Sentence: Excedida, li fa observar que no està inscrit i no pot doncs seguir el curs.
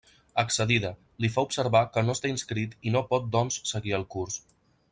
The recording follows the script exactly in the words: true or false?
true